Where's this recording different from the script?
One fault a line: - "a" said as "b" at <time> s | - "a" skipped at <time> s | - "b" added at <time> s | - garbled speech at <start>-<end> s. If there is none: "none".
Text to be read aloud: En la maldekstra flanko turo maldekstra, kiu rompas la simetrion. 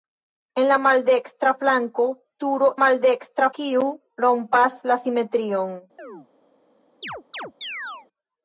none